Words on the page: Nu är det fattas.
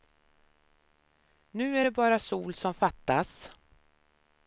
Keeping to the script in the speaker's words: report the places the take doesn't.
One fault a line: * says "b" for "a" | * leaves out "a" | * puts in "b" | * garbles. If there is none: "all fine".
* puts in "bara sol som"